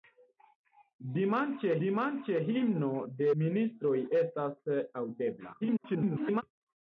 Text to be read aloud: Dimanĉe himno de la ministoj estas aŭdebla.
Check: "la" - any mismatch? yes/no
yes